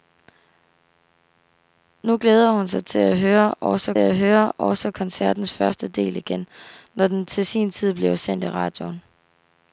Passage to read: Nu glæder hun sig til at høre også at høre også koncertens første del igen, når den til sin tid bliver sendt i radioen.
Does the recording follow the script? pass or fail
pass